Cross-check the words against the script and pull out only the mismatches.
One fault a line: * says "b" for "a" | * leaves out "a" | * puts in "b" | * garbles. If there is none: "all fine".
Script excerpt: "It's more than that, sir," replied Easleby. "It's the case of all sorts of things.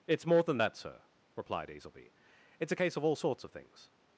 * says "a" for "the"